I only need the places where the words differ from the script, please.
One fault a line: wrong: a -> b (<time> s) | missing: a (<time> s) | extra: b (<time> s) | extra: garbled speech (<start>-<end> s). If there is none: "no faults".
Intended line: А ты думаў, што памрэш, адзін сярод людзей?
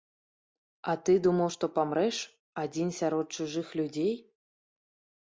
extra: чужых (3.4 s)